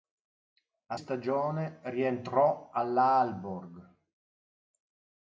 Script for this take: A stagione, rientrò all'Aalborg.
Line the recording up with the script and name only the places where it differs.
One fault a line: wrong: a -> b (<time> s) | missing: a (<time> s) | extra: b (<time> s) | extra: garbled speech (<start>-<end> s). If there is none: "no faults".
no faults